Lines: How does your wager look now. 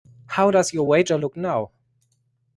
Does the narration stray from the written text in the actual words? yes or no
no